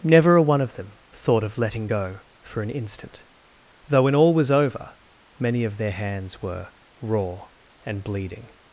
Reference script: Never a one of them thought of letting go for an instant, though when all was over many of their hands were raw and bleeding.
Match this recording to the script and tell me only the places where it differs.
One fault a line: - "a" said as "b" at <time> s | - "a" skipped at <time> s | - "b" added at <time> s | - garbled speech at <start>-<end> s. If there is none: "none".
none